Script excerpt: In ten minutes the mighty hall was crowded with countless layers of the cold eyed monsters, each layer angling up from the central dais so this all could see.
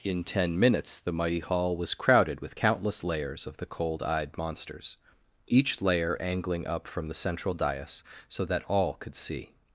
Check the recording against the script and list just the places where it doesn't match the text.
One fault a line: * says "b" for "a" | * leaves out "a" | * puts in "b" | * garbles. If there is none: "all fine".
* says "that" for "this"